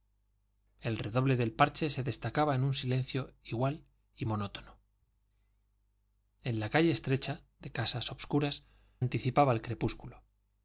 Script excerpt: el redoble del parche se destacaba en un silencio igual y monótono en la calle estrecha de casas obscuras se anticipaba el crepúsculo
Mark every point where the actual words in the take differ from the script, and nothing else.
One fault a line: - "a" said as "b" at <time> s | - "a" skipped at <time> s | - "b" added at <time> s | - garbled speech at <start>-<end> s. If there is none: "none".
- "se" skipped at 8.6 s